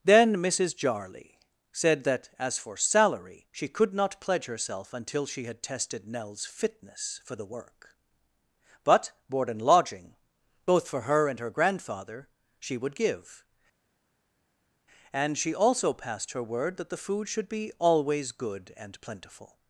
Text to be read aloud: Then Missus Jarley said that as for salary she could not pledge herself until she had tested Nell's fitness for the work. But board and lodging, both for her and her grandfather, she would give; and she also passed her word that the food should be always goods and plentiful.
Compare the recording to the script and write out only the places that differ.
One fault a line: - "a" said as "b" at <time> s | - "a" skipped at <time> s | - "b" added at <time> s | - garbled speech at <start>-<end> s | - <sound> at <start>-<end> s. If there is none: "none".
- "goods" said as "good" at 18.3 s